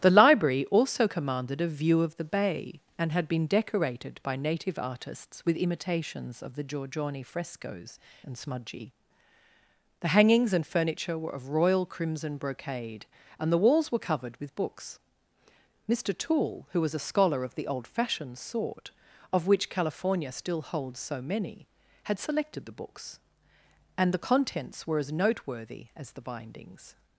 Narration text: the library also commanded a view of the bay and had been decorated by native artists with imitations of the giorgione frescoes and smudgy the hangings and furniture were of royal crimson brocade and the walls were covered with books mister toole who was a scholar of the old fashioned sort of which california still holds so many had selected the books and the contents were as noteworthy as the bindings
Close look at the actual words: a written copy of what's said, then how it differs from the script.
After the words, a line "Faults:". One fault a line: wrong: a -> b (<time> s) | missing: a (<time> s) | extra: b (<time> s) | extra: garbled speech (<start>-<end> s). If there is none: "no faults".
the library also commanded a view of the bay and had been decorated by native artists with imitations of the giorgione frescoes and smudgy the hangings and furniture were of royal crimson brocade and the walls were covered with books mister toole who was a scholar of the old fashioned sort of which california still holds so many had selected the books and the contents were as noteworthy as the bindings
Faults:
no faults